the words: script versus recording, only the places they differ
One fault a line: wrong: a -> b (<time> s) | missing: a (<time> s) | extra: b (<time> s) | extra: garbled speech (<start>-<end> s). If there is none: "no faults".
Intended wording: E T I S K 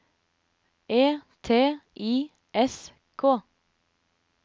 no faults